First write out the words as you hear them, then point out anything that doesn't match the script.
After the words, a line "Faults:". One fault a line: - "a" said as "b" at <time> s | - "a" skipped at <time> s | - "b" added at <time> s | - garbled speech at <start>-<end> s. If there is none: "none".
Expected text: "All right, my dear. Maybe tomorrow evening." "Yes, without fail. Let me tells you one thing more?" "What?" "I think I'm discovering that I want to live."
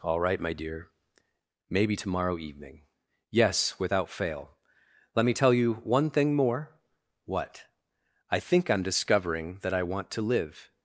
"All right, my dear. Maybe tomorrow evening." "Yes, without fail. Let me tell you one thing more?" "What?" "I think I'm discovering that I want to live."
Faults:
- "tells" said as "tell" at 5.3 s